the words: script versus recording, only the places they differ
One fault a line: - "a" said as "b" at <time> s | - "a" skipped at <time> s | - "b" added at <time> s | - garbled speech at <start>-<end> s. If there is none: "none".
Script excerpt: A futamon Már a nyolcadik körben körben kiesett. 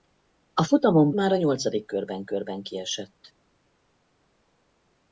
none